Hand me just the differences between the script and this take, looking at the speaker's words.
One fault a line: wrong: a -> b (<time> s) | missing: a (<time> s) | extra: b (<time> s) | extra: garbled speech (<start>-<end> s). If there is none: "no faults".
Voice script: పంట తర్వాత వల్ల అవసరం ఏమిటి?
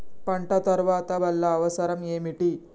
no faults